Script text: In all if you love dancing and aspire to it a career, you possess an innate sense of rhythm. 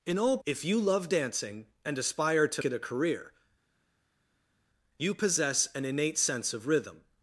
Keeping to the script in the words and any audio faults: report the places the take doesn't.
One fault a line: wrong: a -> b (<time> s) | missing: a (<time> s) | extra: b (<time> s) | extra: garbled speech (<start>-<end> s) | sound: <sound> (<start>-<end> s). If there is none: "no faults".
no faults